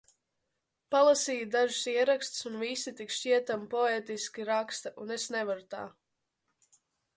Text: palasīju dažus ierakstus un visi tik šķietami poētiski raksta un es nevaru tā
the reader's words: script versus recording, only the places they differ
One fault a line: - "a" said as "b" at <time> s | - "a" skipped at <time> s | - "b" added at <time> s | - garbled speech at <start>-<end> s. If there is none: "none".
none